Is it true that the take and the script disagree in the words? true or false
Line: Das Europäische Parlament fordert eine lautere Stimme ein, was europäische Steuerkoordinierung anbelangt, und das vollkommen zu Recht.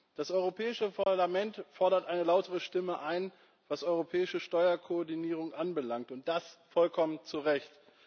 false